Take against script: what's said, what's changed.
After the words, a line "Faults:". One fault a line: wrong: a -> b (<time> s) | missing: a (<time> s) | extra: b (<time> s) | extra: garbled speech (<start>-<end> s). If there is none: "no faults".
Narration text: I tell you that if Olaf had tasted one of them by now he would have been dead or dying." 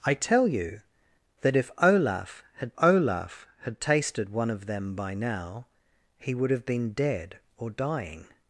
I tell you that if Olaf had Olaf had tasted one of them by now he would have been dead or dying."
Faults:
extra: Olaf had (2.8 s)